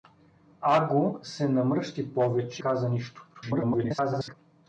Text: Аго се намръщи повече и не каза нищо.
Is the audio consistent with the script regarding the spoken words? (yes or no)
no